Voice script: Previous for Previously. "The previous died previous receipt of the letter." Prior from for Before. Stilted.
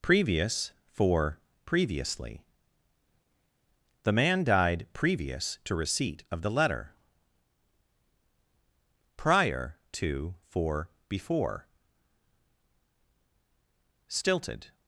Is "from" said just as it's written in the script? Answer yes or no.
no